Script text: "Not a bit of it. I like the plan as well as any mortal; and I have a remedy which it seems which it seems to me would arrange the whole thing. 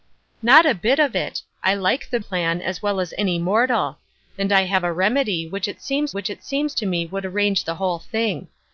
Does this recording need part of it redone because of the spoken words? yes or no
no